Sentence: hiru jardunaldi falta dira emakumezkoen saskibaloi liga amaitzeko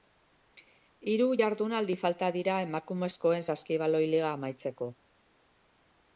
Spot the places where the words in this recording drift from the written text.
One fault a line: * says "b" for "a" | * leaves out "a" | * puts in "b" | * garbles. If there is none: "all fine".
all fine